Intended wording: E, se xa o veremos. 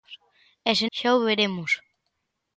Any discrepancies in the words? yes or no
no